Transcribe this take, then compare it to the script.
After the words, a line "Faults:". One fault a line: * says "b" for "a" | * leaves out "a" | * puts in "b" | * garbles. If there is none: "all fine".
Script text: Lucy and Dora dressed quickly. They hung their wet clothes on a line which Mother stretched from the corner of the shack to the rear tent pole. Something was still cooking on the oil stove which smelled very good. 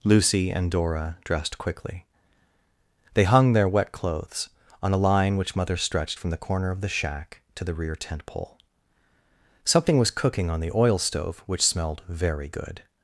Lucy and Dora dressed quickly. They hung their wet clothes on a line which Mother stretched from the corner of the shack to the rear tent pole. Something was cooking on the oil stove which smelled very good.
Faults:
* leaves out "still"